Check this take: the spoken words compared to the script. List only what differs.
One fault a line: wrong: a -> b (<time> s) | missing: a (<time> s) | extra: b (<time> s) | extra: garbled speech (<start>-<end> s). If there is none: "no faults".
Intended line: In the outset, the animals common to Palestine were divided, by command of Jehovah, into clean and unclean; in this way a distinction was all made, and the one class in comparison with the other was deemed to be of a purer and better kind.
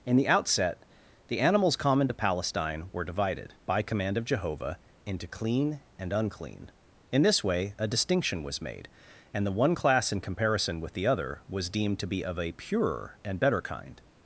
missing: all (8.6 s)